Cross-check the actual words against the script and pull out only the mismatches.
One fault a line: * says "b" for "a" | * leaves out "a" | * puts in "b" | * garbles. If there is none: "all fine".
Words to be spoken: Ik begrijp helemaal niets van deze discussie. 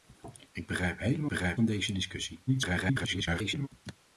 * says "begrijp" for "niets"
* garbles